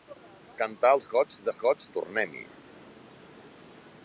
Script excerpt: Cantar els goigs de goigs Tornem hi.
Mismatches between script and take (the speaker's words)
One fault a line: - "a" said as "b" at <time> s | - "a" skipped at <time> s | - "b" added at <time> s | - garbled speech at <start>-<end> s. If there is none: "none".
none